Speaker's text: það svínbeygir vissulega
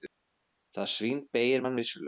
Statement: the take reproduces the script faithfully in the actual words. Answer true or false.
false